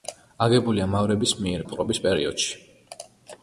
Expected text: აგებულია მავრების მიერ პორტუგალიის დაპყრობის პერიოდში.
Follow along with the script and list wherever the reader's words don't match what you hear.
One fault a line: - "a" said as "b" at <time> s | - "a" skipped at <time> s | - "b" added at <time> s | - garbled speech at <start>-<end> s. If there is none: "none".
- "პორტუგალიის" skipped at 1.6 s